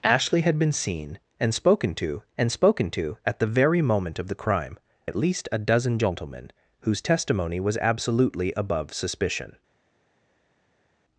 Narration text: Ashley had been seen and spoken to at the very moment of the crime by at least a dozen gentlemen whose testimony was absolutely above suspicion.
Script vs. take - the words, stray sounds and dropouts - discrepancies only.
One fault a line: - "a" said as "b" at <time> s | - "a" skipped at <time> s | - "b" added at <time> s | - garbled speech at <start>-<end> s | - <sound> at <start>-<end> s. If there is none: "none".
- "and spoken to" added at 2.4 s
- "by" skipped at 4.8 s